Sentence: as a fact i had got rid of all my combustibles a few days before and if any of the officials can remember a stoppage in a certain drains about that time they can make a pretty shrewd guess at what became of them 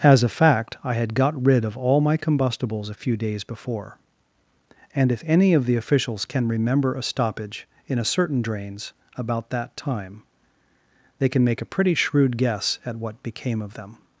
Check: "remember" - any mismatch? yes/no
no